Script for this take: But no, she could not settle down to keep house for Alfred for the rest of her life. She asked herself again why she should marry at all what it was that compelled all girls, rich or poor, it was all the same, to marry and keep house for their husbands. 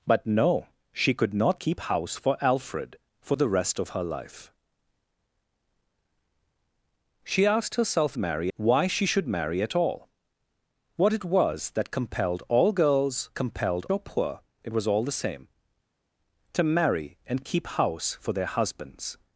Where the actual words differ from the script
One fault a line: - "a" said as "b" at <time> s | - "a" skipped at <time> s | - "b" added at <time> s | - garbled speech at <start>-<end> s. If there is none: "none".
- "settle down to" skipped at 1.6 s
- "again" said as "marry" at 8.2 s
- "rich" said as "compelled" at 13.3 s